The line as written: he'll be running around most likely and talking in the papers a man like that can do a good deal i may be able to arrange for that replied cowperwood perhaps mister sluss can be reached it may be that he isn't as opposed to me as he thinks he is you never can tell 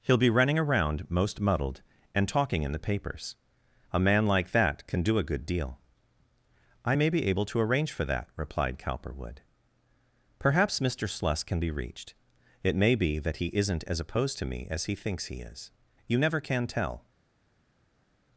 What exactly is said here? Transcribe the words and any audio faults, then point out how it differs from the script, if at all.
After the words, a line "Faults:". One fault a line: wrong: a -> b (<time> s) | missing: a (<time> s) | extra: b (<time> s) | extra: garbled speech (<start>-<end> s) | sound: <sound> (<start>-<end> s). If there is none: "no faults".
he'll be running around most muddled and talking in the papers a man like that can do a good deal i may be able to arrange for that replied cowperwood perhaps mister sluss can be reached it may be that he isn't as opposed to me as he thinks he is you never can tell
Faults:
wrong: likely -> muddled (1.4 s)